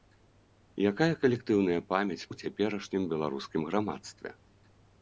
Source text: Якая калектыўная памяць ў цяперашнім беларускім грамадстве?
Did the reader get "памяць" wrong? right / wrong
right